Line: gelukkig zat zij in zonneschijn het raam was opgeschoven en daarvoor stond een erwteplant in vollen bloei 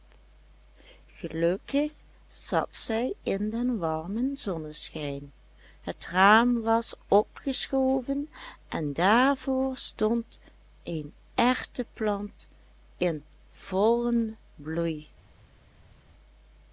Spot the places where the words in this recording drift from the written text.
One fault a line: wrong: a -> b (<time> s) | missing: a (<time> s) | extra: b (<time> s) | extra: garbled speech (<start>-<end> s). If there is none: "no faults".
extra: den warmen (3.5 s)